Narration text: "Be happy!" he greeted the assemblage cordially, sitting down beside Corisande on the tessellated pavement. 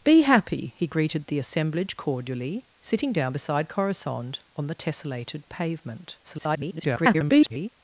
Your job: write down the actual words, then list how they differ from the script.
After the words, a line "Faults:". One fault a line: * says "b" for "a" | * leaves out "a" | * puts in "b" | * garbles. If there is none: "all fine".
"Be happy!" he greeted the assemblage cordially, sitting down beside Corisande on the tessellated pavement. [garbled]
Faults:
* garbles